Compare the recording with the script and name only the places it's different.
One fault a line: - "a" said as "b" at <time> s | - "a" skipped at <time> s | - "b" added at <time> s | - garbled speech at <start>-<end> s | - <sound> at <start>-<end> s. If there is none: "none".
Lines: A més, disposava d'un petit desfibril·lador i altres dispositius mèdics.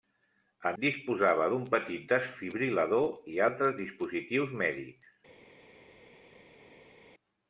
- "més" skipped at 0.7 s